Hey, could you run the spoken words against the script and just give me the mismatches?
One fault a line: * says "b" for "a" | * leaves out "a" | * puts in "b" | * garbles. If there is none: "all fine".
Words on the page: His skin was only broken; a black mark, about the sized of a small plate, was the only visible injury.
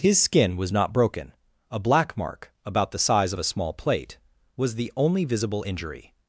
* says "not" for "only"
* says "size" for "sized"